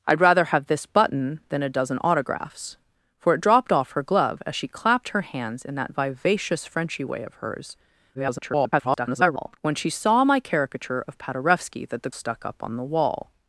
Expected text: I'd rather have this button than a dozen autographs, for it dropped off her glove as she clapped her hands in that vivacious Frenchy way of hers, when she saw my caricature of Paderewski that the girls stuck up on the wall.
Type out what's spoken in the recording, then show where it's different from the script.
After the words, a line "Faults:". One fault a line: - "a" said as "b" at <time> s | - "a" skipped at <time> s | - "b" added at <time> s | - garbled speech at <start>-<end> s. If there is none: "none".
I'd rather have this button than a dozen autographs, for it dropped off her glove as she clapped her hands in that vivacious Frenchy way of hers, [garbled] when she saw my caricature of Paderewski that the stuck up on the wall.
Faults:
- garbled speech at 8.1-9.6 s
- "girls" skipped at 12.1 s